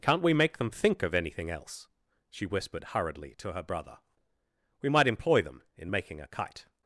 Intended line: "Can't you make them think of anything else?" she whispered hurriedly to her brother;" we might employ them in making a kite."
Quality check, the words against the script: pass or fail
fail